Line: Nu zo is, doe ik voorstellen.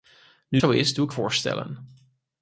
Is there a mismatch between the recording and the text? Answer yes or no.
no